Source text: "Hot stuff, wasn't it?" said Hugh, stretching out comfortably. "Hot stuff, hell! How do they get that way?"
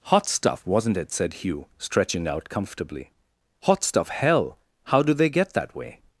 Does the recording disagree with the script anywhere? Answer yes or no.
no